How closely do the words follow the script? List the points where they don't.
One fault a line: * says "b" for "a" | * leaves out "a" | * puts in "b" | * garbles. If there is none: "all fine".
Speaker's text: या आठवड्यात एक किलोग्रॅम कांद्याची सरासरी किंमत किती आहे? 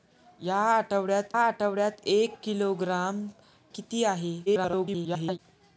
* puts in "आठवड्यात"
* leaves out "कांद्याची सरासरी किंमत"
* garbles